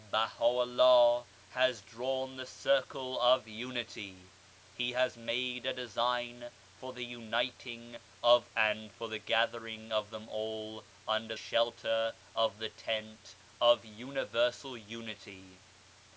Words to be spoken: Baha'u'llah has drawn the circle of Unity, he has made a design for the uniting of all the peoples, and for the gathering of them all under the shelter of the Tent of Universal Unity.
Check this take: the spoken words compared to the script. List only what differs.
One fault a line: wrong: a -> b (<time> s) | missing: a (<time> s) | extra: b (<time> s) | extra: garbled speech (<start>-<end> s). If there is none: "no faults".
missing: all the peoples (8.5 s)
missing: the (11.4 s)